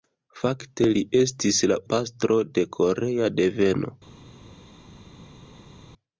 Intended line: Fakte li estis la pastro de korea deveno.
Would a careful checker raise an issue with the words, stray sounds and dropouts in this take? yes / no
no